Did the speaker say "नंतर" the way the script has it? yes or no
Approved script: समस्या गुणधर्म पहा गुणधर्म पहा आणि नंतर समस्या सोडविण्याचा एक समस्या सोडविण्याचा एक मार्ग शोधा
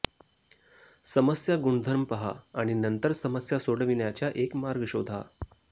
yes